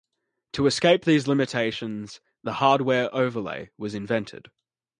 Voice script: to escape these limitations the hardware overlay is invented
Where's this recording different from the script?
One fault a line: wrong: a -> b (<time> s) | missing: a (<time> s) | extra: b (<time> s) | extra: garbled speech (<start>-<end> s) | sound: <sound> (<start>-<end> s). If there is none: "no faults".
wrong: is -> was (3.8 s)